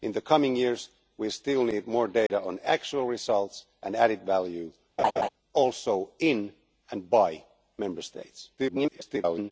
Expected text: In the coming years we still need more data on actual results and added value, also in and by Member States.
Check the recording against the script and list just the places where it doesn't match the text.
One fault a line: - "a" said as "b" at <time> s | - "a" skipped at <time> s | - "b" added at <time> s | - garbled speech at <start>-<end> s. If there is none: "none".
- garbled speech at 8.6-9.5 s